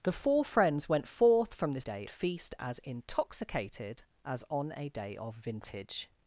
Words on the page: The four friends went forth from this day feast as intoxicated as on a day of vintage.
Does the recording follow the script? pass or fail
pass